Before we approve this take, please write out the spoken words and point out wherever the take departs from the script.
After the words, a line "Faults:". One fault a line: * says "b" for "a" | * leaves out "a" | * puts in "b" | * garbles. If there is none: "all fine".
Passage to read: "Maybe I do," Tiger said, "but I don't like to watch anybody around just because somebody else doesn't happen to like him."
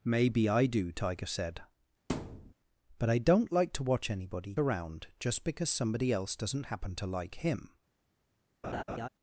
"Maybe I do," Tiger said, "but I don't like to watch anybody around just because somebody else doesn't happen to like him."
Faults:
all fine